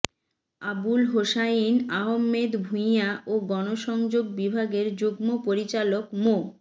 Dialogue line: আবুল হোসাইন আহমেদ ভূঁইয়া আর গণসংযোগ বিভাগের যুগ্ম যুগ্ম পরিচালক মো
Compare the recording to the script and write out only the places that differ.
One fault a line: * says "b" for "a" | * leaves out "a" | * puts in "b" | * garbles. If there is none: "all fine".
* says "ও" for "আর"
* leaves out "যুগ্ম"